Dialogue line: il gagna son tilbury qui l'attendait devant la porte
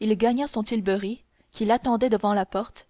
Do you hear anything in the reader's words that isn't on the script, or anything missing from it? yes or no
no